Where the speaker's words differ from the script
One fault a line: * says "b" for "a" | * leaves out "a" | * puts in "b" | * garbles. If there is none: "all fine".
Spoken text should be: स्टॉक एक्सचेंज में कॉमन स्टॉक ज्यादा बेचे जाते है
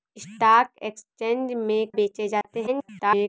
* leaves out "कॉमन स्टॉक ज्यादा"
* garbles